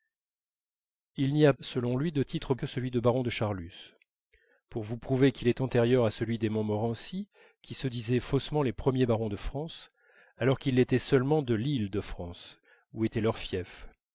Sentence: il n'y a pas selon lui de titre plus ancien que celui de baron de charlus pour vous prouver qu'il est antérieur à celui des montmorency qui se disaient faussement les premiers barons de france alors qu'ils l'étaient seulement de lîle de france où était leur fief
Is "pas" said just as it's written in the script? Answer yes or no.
no